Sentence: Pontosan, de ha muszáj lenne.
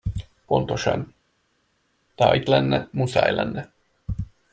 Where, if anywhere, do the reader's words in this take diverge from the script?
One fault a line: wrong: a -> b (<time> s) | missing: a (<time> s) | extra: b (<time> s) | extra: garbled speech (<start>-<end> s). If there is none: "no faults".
extra: itt lenne (2.3 s)